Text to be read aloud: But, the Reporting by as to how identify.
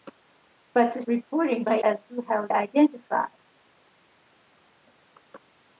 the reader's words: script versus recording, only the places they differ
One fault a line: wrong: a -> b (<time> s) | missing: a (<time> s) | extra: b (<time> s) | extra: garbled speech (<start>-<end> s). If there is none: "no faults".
no faults